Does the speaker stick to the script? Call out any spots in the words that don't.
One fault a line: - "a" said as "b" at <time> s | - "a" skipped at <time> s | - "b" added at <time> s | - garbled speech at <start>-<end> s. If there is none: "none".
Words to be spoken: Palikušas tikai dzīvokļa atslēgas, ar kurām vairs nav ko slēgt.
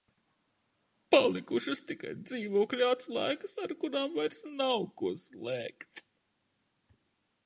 none